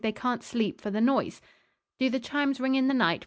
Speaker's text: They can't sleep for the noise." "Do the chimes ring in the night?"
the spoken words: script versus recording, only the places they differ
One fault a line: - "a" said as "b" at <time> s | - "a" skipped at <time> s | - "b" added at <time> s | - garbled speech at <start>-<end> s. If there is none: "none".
none